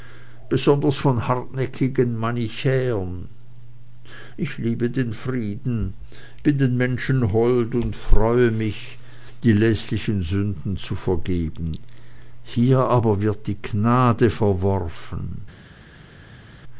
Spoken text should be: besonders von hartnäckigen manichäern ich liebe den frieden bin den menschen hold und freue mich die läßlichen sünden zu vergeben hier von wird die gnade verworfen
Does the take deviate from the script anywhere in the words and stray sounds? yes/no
yes